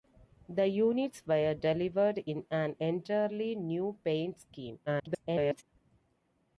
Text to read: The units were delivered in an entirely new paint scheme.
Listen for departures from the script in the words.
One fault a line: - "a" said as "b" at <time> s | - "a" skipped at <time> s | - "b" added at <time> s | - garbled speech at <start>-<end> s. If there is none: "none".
- garbled speech at 4.9-5.6 s